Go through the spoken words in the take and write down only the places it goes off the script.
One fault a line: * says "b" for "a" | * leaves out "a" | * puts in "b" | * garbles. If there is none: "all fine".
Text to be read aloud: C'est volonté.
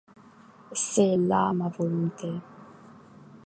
* puts in "là ma"